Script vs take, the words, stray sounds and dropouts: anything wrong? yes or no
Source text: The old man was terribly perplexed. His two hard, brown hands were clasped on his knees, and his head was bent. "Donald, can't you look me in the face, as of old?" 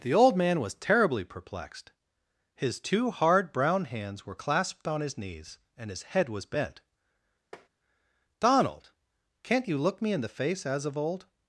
yes